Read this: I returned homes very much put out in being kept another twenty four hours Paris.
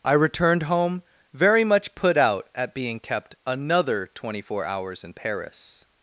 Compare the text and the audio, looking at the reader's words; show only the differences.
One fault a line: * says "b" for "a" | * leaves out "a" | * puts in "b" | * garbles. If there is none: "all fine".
* says "home" for "homes"
* says "at" for "in"
* puts in "in"